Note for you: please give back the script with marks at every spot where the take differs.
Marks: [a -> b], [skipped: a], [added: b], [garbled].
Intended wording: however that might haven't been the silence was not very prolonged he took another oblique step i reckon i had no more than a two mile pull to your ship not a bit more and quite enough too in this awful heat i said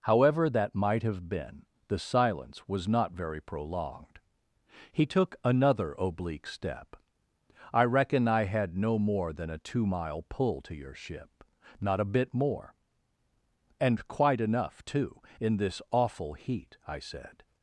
however that might [haven't -> have] been the silence was not very prolonged he took another oblique step i reckon i had no more than a two mile pull to your ship not a bit more and quite enough too in this awful heat i said